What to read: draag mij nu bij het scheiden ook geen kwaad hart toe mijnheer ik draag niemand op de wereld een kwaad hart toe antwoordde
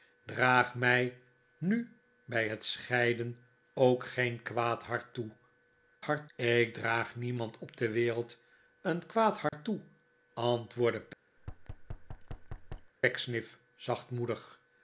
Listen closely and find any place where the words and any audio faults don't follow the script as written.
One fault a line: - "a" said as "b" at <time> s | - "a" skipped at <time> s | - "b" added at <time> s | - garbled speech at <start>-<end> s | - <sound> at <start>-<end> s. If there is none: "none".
- "mijnheer" said as "hart" at 6.0 s
- dropout at 9.5-9.5 s
- thud at 11.4-12.9 s